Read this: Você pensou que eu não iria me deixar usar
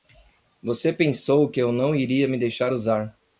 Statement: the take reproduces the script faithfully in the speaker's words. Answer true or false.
true